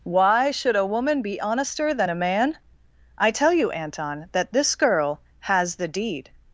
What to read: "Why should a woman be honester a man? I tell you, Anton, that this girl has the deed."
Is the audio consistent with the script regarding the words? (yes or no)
no